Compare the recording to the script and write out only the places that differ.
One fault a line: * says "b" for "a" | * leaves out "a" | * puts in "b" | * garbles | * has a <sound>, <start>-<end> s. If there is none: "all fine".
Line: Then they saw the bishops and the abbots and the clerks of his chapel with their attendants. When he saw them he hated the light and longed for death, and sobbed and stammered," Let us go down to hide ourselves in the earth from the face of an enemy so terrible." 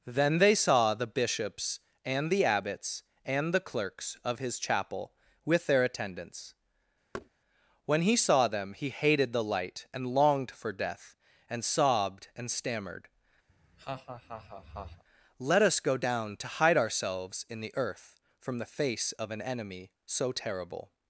* has a thud, 7.1-7.3 s
* has a laugh, 13.5-15.0 s